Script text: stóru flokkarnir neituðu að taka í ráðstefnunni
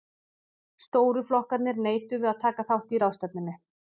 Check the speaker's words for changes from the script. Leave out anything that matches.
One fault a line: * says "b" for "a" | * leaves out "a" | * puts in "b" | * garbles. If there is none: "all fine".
* puts in "þátt"